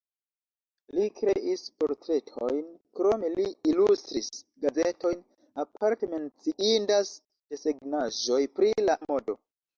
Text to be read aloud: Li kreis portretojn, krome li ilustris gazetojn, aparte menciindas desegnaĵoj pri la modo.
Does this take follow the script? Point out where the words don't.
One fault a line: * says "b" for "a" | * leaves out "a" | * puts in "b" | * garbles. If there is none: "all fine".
all fine